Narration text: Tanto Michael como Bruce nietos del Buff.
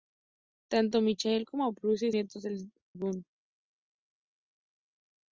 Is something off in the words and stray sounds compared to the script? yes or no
no